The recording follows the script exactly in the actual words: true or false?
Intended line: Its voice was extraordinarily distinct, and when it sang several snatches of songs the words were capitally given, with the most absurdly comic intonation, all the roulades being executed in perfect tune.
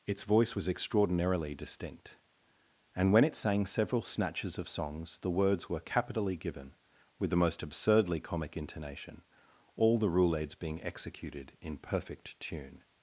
true